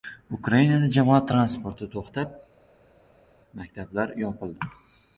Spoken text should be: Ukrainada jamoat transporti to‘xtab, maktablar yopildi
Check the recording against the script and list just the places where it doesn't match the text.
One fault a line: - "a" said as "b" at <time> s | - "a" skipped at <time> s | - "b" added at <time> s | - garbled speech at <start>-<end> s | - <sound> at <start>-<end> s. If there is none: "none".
none